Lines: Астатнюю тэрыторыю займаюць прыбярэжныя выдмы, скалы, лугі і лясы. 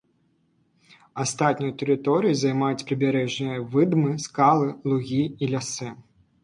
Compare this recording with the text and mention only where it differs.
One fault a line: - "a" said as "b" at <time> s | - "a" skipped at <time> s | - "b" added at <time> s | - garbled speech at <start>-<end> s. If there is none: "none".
none